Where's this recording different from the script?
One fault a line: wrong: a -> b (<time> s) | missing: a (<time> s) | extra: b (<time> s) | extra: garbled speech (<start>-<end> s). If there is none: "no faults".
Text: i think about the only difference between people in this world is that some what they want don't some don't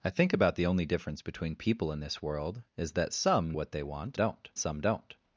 no faults